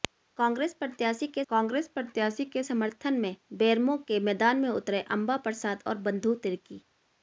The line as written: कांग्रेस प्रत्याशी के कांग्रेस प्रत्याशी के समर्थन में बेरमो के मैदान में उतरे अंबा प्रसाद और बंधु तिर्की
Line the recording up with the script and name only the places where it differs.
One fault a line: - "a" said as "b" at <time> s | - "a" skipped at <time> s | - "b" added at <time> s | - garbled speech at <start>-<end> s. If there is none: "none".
none